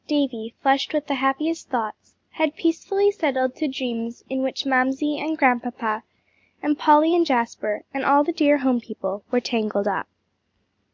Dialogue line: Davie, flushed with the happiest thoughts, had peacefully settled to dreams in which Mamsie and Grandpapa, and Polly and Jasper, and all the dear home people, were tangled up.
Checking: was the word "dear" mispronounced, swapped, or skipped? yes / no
no